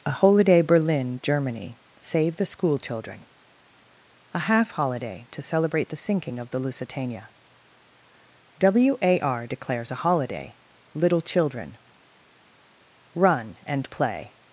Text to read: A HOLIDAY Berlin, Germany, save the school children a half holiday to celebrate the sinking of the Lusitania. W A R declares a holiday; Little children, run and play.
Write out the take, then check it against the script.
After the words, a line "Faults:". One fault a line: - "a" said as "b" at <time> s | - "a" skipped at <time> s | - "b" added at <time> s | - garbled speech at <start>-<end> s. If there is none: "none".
A HOLIDAY Berlin, Germany, save the school children a half holiday to celebrate the sinking of the Lusitania. W A R declares a holiday; Little children, run and play.
Faults:
none